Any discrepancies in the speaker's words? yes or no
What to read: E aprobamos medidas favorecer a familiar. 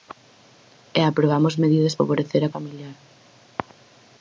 no